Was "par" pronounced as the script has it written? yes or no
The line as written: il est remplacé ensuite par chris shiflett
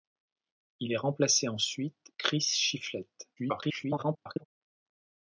no